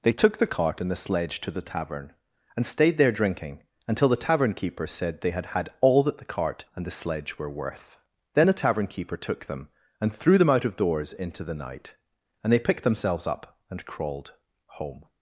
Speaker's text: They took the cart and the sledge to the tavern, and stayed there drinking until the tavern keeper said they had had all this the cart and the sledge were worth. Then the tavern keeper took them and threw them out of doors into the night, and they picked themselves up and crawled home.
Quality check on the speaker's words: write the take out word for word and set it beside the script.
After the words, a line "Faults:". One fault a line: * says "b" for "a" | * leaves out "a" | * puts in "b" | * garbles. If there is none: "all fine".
They took the cart and the sledge to the tavern, and stayed there drinking until the tavern keeper said they had had all that the cart and the sledge were worth. Then the tavern keeper took them and threw them out of doors into the night, and they picked themselves up and crawled home.
Faults:
* says "that" for "this"